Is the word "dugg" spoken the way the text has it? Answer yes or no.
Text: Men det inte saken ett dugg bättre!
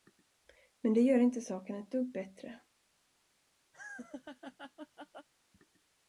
yes